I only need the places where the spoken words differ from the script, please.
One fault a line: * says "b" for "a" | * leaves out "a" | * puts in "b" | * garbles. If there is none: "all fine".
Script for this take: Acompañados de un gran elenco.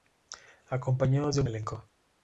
* leaves out "gran"